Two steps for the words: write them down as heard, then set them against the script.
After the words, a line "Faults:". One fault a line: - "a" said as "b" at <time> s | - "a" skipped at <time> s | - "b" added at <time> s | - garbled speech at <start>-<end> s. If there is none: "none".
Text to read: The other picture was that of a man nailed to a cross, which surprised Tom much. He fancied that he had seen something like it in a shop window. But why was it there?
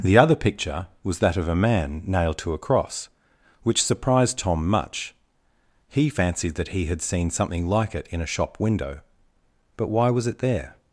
The other picture was that of a man nailed to a cross, which surprised Tom much. He fancied that he had seen something like it in a shop window. But why was it there?
Faults:
none